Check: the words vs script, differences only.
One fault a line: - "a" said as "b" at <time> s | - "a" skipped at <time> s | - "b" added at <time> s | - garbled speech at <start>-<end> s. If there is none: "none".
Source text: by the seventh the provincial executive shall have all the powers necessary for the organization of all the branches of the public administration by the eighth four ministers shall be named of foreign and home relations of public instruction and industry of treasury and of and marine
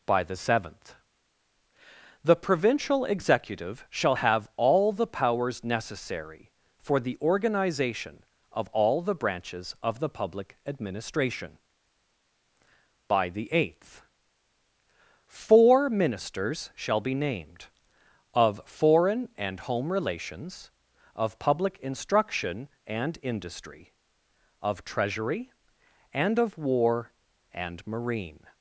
- "war" added at 26.6 s